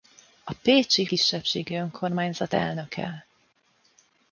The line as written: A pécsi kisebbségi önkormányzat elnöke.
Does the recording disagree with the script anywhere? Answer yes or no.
no